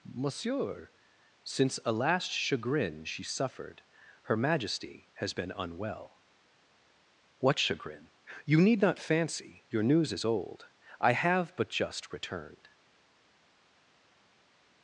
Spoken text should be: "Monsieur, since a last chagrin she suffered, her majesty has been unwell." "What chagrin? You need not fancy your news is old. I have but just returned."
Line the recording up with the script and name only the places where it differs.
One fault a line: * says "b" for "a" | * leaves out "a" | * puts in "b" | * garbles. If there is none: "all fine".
all fine